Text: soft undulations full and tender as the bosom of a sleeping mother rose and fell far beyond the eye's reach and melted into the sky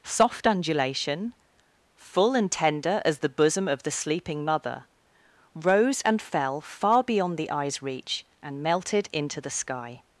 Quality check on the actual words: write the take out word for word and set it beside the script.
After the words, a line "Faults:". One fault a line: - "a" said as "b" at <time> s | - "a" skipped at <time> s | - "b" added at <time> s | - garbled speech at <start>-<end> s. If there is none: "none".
soft undulation full and tender as the bosom of the sleeping mother rose and fell far beyond the eye's reach and melted into the sky
Faults:
- "undulations" said as "undulation" at 0.5 s
- "a" said as "the" at 3.8 s